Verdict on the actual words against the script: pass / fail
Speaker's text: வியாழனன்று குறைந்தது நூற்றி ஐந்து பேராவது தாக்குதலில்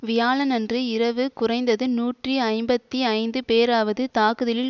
fail